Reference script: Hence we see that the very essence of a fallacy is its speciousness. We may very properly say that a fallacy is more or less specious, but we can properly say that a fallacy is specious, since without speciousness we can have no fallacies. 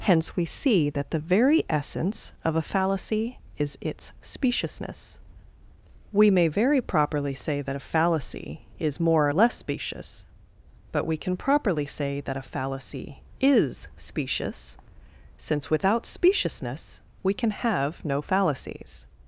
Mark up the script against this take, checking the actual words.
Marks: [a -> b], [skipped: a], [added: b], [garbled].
Hence we see that the very essence of a fallacy is its speciousness. We may very properly say that a fallacy is more or less specious, but we can properly say that a fallacy is specious, since without speciousness we can have no fallacies.